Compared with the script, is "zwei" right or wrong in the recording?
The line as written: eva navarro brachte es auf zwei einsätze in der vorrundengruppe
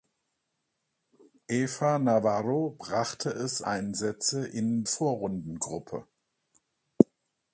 wrong